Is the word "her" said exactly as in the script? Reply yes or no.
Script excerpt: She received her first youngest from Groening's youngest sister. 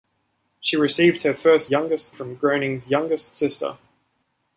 yes